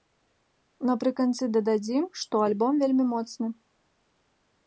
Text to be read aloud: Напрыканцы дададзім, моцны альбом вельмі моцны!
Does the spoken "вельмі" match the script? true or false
true